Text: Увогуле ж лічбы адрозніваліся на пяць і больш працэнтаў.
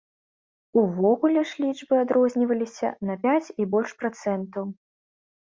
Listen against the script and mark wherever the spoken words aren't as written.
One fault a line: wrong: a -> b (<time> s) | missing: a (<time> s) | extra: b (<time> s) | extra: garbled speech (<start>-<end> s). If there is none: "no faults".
no faults